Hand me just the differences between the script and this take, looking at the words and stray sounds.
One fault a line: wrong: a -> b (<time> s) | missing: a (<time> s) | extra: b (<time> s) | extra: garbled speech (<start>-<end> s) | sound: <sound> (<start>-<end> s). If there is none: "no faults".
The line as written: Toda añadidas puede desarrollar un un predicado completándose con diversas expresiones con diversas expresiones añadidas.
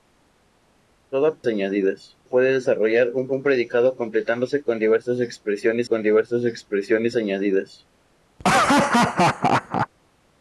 sound: laugh (8.4-9.9 s)